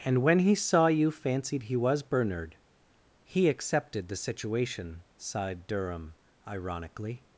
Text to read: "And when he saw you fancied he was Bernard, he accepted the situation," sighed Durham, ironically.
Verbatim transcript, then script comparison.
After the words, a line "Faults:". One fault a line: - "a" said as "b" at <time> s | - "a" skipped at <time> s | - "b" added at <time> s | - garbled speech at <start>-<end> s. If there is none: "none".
"And when he saw you fancied he was Bernard, he accepted the situation," sighed Durham, ironically.
Faults:
none